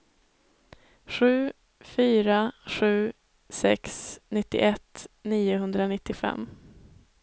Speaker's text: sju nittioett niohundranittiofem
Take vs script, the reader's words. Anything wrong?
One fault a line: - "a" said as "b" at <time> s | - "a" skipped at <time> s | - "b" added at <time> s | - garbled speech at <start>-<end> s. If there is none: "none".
- "fyra sju sex" added at 1.8 s